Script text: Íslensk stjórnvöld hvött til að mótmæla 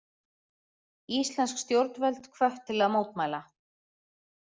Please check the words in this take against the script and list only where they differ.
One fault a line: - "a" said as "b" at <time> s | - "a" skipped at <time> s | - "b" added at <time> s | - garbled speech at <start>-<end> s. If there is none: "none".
none